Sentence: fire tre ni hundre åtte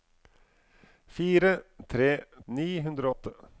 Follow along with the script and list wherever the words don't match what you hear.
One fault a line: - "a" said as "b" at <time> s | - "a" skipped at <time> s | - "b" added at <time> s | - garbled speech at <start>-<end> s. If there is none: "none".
none